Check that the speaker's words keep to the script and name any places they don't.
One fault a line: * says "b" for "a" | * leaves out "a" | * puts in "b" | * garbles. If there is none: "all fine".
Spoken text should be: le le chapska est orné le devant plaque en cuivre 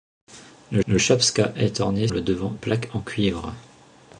all fine